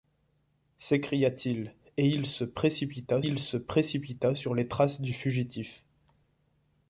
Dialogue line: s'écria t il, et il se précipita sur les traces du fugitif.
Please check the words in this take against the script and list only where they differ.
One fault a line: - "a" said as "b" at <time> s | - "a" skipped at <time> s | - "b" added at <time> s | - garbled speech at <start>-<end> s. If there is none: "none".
- "il se précipita" added at 3.2 s